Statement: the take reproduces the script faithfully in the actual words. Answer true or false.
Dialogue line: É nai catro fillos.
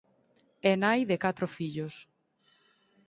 false